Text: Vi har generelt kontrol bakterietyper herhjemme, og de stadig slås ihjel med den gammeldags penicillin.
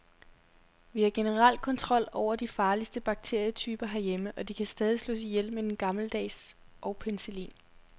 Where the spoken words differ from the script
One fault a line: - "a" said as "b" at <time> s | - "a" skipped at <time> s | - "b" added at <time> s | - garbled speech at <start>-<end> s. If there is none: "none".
- "over de farligste" added at 2.1 s
- "kan" added at 4.5 s
- "og" added at 6.8 s